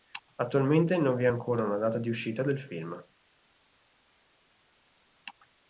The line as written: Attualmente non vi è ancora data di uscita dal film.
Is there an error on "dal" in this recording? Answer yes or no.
yes